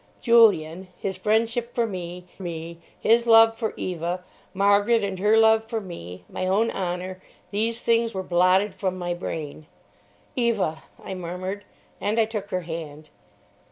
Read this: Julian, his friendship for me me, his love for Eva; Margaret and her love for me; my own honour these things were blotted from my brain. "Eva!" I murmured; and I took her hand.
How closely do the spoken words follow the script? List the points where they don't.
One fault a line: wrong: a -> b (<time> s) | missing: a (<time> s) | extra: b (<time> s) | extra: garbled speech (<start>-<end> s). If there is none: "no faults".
no faults